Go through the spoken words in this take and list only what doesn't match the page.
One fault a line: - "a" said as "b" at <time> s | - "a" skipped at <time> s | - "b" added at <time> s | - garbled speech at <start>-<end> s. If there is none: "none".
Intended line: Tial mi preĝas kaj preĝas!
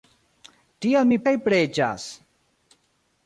- "preĝas" skipped at 1.2 s